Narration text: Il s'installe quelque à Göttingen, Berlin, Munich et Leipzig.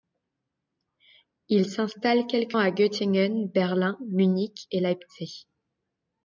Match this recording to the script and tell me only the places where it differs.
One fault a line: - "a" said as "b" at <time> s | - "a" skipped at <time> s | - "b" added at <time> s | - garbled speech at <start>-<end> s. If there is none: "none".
none